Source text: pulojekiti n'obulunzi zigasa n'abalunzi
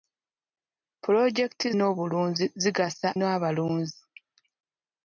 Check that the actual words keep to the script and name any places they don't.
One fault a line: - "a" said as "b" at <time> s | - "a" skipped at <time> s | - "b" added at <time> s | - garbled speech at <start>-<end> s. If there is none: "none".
none